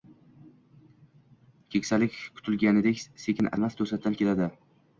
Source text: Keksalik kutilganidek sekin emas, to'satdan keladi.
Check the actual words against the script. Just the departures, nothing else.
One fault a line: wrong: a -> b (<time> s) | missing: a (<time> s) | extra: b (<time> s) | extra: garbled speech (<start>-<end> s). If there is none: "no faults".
no faults